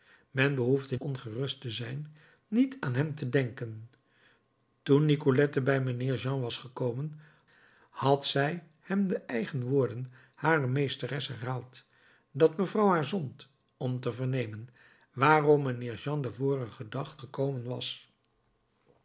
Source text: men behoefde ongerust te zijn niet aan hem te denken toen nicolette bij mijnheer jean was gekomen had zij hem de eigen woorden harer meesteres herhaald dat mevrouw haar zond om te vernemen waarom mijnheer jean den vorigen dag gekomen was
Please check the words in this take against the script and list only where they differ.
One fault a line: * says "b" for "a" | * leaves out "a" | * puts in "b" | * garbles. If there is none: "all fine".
all fine